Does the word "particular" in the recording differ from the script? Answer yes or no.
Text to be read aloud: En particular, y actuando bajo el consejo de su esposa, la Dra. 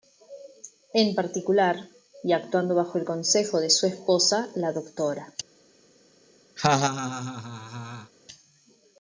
no